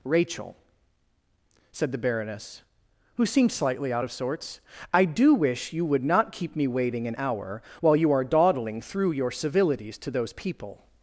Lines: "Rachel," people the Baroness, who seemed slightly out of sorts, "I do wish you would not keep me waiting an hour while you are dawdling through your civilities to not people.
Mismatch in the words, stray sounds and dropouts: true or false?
true